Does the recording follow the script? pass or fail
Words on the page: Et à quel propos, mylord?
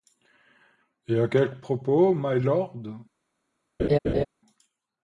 pass